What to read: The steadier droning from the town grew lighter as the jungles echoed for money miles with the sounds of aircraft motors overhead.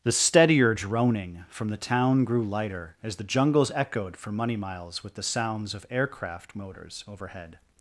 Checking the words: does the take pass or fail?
pass